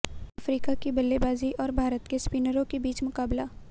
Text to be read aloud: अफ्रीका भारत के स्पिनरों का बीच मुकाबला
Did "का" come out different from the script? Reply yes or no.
yes